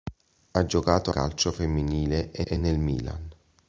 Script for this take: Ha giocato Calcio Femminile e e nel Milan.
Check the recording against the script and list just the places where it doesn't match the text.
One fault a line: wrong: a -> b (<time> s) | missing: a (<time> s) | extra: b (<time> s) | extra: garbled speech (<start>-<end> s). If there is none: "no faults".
no faults